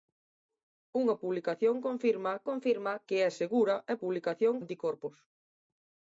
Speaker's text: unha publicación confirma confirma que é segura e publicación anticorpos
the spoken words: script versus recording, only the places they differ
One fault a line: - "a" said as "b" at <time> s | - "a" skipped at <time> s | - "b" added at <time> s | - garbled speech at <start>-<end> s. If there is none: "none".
none